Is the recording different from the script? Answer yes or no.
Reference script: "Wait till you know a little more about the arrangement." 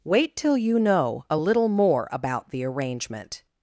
no